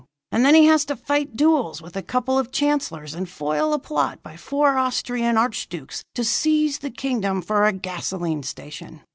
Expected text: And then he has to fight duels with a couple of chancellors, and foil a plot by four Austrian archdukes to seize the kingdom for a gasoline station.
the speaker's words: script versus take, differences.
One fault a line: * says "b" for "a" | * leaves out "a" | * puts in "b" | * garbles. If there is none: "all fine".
all fine